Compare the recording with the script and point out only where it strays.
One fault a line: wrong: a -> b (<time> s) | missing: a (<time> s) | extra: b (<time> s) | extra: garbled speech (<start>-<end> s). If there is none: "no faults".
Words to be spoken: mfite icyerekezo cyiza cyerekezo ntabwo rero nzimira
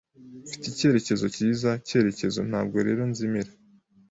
no faults